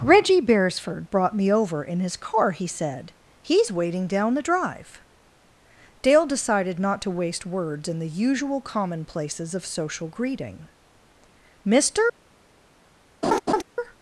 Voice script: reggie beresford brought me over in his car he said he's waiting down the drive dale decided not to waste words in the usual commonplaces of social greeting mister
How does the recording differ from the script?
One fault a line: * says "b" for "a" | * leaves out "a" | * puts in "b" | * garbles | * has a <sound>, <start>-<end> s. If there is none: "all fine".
* has a laugh, 13.2-13.6 s